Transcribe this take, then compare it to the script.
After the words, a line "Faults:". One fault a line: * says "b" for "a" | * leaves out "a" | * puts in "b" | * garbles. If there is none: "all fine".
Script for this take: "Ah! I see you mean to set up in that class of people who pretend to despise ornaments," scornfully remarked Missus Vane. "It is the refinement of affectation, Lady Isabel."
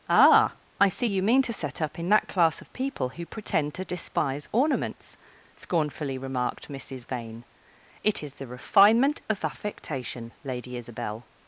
"Ah! I see you mean to set up in that class of people who pretend to despise ornaments," scornfully remarked Missus Vane. "It is the refinement of affectation, Lady Isabel."
Faults:
all fine